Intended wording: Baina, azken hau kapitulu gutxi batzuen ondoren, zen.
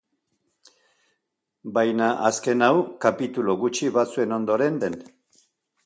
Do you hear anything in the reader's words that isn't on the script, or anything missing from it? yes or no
no